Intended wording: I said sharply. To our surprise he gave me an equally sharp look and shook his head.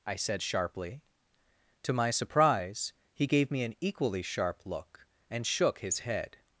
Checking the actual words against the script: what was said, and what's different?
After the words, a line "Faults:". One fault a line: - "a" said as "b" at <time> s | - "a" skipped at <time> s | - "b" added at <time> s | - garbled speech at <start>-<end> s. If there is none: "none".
I said sharply. To my surprise he gave me an equally sharp look and shook his head.
Faults:
- "our" said as "my" at 1.9 s